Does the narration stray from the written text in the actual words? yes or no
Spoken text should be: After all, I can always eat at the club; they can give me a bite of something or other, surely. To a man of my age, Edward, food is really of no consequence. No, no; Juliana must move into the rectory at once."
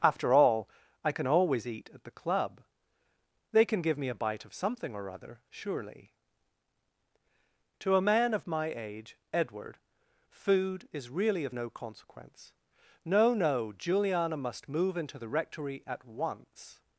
no